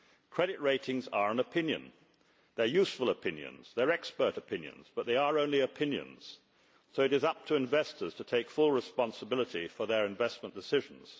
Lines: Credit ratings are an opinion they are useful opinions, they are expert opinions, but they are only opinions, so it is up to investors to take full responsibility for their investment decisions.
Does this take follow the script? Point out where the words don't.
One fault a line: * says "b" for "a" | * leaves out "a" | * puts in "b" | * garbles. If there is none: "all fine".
all fine